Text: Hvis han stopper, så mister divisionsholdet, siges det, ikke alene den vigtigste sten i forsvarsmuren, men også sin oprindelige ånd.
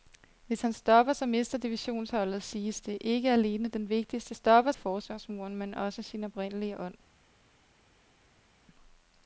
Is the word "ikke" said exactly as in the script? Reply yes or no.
yes